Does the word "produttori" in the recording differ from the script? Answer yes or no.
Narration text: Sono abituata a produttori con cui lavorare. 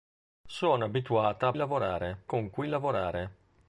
yes